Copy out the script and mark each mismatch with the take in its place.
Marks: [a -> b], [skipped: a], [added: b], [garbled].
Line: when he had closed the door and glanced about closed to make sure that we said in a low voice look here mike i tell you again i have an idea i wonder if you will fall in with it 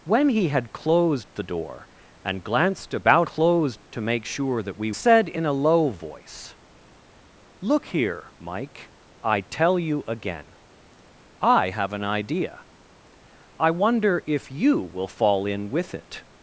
when he had closed the door and glanced about closed to make sure that we said in a low voice look here mike i tell you again i have an idea i wonder if you will fall in with it